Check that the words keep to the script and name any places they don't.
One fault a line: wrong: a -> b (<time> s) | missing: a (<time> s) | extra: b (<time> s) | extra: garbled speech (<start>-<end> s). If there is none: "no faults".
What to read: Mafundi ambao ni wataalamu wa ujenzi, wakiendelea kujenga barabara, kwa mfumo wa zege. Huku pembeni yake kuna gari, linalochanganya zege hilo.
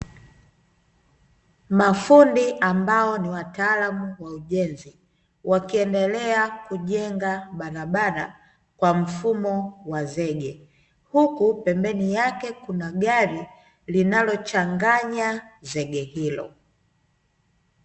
no faults